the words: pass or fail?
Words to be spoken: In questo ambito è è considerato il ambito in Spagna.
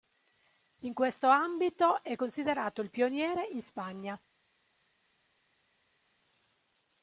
fail